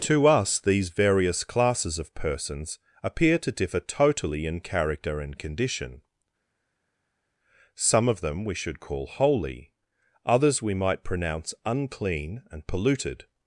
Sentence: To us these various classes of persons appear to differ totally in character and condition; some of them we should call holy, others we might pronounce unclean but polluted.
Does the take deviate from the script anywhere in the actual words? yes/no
yes